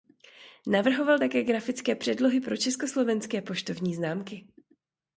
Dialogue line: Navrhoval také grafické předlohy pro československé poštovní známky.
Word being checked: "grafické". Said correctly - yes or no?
yes